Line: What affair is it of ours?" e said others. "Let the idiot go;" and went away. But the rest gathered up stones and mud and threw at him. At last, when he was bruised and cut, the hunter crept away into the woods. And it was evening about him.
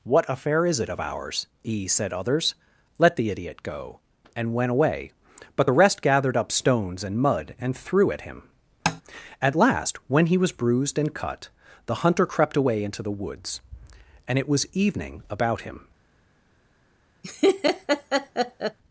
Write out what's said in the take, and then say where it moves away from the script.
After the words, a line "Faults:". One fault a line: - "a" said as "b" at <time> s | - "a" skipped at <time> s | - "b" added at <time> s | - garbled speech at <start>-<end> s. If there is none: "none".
What affair is it of ours?" e said others. "Let the idiot go;" and went away. But the rest gathered up stones and mud and threw at him. At last, when he was bruised and cut, the hunter crept away into the woods. And it was evening about him.
Faults:
none